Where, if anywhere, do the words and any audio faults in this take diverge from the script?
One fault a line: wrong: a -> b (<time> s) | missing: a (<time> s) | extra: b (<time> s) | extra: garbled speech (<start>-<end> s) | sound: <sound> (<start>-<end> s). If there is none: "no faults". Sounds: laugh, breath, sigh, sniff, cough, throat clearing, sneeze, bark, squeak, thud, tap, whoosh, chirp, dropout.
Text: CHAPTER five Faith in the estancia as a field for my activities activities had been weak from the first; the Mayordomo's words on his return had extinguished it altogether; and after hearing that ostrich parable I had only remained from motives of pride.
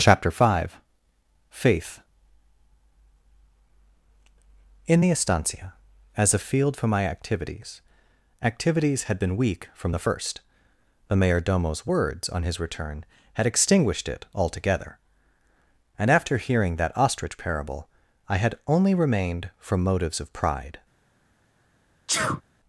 sound: sneeze (22.1-22.4 s)